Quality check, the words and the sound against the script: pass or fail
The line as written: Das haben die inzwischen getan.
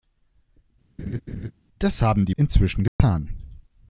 fail